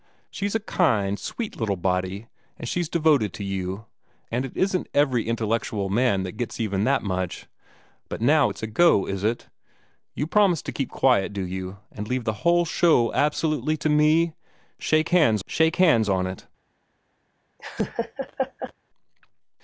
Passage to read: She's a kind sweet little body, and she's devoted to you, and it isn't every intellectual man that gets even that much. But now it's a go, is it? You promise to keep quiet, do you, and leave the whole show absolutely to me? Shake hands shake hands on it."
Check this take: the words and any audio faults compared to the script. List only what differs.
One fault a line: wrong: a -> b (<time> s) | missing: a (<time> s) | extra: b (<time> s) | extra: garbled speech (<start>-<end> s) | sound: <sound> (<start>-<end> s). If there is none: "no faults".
sound: laugh (17.6-18.7 s)